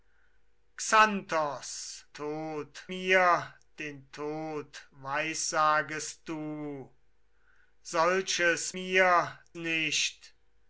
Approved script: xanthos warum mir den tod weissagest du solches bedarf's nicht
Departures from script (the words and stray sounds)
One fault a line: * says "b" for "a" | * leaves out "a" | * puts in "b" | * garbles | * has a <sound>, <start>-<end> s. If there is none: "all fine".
* says "tod" for "warum"
* says "mir" for "bedarf's"